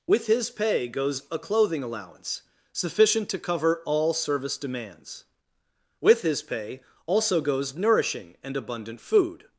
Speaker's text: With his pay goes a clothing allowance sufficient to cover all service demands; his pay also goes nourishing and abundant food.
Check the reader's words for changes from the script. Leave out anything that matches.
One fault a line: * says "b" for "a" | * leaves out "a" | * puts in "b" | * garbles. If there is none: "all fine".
* puts in "with"